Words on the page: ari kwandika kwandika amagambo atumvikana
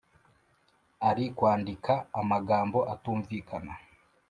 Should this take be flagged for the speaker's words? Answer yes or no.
yes